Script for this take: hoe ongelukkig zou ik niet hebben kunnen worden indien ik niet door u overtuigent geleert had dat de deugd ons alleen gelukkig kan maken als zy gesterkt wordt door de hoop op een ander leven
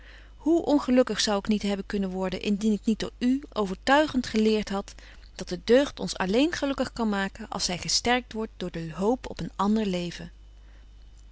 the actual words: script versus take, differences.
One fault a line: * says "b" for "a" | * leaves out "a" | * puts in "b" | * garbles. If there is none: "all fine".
all fine